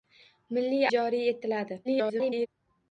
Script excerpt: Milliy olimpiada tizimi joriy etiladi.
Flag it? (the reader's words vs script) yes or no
yes